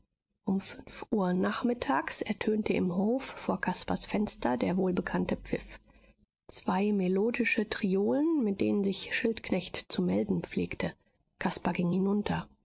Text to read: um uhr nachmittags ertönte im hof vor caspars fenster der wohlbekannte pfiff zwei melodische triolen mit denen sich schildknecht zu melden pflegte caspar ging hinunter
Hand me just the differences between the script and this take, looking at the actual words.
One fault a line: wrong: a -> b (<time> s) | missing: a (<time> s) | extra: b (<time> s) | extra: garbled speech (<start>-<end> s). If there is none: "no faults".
extra: fünf (0.6 s)